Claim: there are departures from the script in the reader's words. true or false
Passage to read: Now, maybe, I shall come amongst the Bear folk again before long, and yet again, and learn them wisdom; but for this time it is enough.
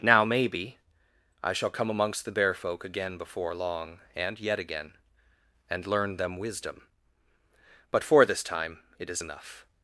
false